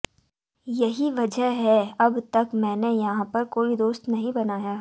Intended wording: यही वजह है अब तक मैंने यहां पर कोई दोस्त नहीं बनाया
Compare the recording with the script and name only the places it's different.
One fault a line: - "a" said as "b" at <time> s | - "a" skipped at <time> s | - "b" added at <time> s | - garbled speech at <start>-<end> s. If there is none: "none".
none